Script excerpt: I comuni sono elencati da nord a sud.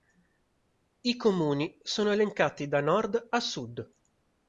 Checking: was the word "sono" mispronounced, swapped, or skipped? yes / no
no